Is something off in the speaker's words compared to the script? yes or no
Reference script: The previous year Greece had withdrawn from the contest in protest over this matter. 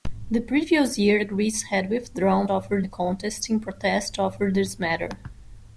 yes